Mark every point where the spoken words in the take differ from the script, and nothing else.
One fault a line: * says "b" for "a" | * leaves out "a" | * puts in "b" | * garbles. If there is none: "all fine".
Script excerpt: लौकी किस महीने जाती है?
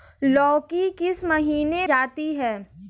all fine